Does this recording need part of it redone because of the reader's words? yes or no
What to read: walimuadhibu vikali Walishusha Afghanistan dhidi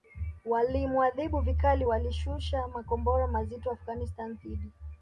yes